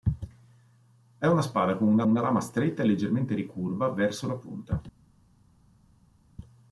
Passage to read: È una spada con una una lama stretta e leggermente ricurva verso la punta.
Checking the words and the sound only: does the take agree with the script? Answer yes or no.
yes